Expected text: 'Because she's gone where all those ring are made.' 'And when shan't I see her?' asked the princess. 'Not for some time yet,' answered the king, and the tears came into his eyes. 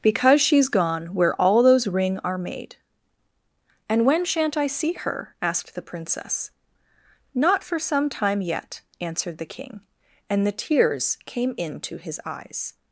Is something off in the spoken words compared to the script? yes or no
no